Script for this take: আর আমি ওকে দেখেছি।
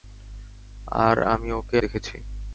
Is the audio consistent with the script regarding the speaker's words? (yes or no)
yes